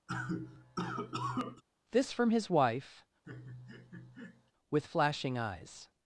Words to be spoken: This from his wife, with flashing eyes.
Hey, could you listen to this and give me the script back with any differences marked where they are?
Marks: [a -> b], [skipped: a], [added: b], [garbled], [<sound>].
[cough] This from his wife, [laugh] with flashing eyes.